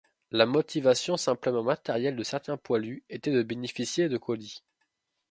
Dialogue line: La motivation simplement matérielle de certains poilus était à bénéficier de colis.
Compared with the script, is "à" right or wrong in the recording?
wrong